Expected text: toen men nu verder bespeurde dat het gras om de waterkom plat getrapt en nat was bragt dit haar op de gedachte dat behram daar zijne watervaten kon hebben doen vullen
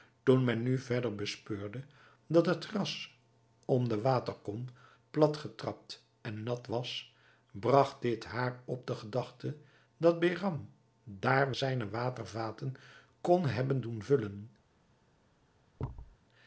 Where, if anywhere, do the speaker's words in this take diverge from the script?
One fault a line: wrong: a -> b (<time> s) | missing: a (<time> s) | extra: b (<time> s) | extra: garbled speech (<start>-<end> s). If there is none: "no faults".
no faults